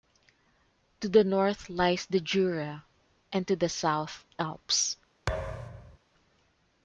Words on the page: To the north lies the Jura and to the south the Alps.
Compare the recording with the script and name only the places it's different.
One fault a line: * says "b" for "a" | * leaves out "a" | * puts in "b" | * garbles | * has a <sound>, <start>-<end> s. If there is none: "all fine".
* leaves out "the"
* has a thud, 5.3-6.0 s